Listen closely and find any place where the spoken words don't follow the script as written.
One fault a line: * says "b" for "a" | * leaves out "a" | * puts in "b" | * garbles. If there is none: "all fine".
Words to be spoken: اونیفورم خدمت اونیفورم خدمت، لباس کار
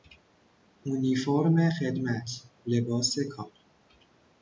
* leaves out "اونیفورم خدمت"